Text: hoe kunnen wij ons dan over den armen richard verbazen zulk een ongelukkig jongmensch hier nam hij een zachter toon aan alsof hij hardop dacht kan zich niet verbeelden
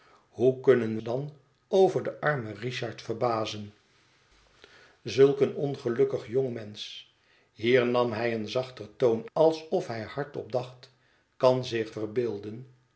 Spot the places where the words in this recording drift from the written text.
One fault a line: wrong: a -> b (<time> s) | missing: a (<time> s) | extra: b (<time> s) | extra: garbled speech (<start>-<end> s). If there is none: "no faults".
missing: wij ons (1.0 s)
missing: aan (9.3 s)
missing: niet (11.9 s)